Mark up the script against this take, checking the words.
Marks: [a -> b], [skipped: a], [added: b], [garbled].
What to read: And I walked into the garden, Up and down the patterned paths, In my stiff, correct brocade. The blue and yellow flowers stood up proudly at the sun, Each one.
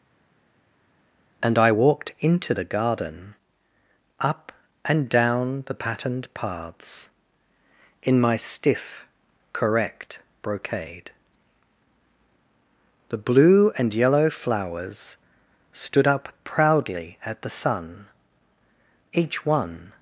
And I walked into the garden, Up and down the patterned paths, In my stiff, correct brocade. The blue and yellow flowers stood up proudly at the sun, Each one.